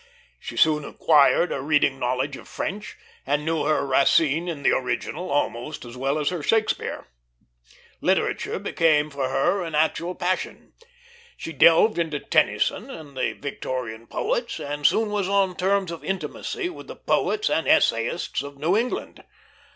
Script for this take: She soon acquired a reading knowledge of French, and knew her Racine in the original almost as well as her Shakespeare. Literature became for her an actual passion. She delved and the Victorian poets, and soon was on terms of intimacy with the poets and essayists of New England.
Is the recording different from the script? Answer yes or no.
yes